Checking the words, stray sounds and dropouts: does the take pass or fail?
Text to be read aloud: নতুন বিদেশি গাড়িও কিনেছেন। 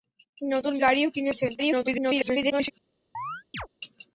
fail